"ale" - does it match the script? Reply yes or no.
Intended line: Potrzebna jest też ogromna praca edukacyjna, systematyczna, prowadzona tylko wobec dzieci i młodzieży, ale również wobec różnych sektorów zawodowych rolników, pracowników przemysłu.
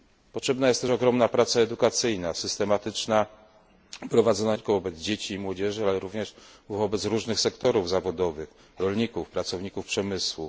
yes